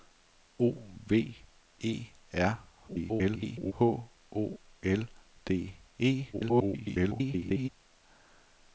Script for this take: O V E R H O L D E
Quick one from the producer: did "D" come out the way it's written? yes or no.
yes